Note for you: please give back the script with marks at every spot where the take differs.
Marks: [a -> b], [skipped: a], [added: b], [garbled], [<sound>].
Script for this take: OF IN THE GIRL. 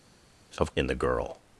OF IN THE GIRL.